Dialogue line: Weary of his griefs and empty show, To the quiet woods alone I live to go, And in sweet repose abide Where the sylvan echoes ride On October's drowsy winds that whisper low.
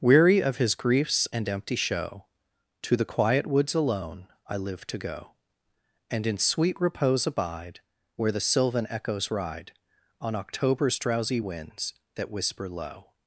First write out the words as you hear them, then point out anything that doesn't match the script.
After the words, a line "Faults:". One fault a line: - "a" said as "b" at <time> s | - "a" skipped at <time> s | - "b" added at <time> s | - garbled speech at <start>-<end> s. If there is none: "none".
Weary of his griefs and empty show, To the quiet woods alone I live to go, And in sweet repose abide Where the sylvan echoes ride On October's drowsy winds that whisper low.
Faults:
none